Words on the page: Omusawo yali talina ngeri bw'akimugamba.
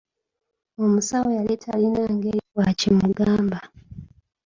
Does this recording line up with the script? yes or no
yes